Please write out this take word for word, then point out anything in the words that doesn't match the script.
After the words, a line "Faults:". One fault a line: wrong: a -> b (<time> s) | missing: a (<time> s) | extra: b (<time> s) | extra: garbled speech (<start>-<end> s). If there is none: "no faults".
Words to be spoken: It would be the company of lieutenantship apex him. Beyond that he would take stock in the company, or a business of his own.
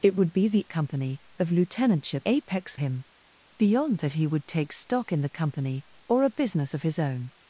It would be the company of lieutenantship apex him. Beyond that he would take stock in the company, or a business of his own.
Faults:
no faults